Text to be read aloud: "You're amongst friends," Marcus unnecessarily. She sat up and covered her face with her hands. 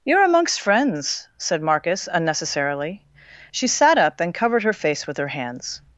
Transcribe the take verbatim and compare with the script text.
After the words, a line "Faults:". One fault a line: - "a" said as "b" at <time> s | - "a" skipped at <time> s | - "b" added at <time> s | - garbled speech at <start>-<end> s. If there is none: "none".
"You're amongst friends," said Marcus unnecessarily. She sat up and covered her face with her hands.
Faults:
- "said" added at 1.4 s